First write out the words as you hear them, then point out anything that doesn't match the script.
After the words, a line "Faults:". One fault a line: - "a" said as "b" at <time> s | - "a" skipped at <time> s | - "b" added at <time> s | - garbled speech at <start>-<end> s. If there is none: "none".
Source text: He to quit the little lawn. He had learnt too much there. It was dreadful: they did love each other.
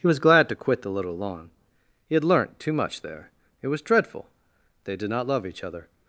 He was glad to quit the little lawn. He had learnt too much there. It was dreadful: they did not love each other.
Faults:
- "was glad" added at 0.1 s
- "not" added at 5.1 s